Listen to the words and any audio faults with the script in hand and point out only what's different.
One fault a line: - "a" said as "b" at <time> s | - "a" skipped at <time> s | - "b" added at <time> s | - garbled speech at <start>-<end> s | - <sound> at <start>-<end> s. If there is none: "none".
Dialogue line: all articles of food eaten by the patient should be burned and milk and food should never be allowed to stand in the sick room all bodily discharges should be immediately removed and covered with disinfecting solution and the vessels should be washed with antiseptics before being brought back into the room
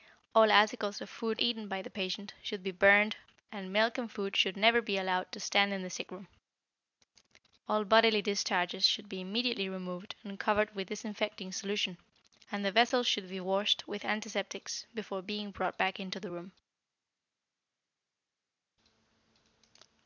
none